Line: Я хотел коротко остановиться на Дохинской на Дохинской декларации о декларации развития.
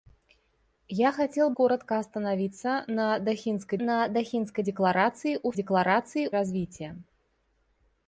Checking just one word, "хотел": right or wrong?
right